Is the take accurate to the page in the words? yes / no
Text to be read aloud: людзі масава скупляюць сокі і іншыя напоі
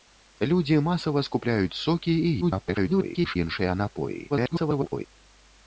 no